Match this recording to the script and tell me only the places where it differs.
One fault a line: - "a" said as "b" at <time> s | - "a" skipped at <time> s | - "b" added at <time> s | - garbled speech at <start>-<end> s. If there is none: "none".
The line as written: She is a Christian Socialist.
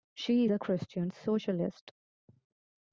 - "is" skipped at 0.5 s